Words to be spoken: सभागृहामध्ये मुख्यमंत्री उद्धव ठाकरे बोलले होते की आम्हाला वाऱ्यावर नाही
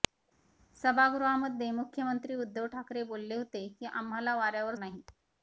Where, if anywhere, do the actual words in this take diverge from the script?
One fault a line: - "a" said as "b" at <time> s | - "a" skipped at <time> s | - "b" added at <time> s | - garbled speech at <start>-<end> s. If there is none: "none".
none